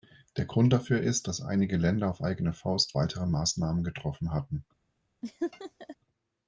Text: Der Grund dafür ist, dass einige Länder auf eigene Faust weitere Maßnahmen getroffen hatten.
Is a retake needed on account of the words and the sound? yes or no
yes